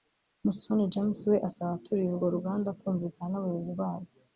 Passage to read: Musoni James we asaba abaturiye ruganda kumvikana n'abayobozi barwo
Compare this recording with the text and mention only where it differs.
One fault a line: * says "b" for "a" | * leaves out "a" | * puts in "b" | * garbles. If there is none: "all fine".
* puts in "urwo"